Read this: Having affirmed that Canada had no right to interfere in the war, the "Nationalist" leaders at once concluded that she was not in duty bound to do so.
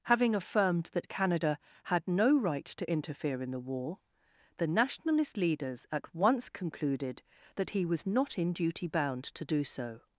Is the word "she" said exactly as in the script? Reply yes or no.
no